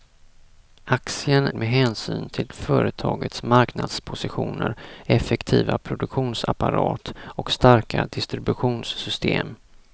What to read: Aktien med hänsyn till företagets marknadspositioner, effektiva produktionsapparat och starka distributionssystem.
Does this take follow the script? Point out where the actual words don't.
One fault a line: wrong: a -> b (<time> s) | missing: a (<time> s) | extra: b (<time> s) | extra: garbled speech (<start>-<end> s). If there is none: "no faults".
no faults